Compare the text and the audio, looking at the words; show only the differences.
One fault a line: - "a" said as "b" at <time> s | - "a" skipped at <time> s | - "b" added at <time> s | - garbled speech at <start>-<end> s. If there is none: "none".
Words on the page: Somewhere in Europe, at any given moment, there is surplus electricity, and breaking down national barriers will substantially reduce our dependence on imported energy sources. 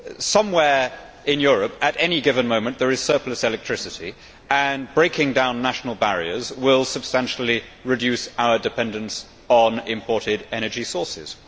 none